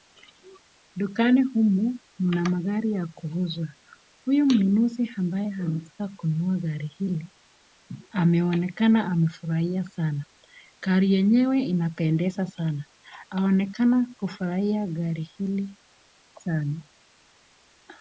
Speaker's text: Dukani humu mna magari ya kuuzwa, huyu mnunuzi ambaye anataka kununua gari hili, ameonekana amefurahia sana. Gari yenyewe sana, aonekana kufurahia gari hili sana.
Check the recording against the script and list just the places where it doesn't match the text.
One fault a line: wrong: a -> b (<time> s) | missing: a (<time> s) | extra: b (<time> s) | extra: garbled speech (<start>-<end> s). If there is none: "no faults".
extra: inapendeza (11.6 s)